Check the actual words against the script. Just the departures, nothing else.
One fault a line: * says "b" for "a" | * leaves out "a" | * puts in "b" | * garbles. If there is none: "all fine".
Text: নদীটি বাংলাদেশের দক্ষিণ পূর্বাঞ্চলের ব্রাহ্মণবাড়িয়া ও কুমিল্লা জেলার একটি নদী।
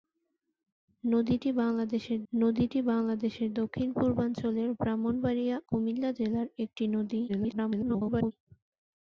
* puts in "নদীটি বাংলাদেশের"
* leaves out "ও"
* garbles